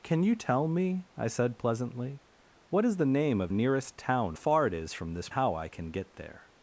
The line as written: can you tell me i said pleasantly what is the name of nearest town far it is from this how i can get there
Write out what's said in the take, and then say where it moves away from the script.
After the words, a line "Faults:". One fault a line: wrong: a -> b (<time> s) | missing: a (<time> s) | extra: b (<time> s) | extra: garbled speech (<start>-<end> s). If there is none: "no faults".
can you tell me i said pleasantly what is the name of nearest town far it is from this how i can get there
Faults:
no faults